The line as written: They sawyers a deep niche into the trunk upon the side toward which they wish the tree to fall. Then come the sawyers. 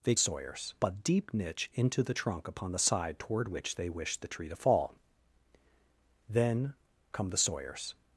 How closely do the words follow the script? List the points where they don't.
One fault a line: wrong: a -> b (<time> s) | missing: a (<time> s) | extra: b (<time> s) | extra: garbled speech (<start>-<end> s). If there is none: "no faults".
no faults